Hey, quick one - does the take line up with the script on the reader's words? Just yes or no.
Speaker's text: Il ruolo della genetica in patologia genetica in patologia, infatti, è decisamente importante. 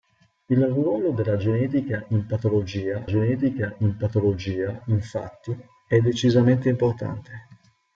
yes